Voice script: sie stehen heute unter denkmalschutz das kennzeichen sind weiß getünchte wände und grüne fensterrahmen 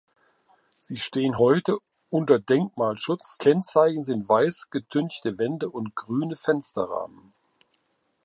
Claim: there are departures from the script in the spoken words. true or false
true